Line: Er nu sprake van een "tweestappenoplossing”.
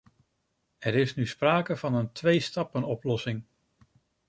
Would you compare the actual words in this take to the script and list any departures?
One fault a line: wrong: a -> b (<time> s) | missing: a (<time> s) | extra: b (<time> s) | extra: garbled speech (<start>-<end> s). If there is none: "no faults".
extra: is (0.9 s)